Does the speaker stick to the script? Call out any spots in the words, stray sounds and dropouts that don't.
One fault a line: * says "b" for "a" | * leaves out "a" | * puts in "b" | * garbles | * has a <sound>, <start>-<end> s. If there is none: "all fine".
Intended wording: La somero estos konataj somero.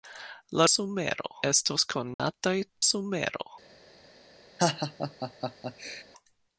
* has a dropout, 2.1-2.2 s
* has a laugh, 4.6-6.0 s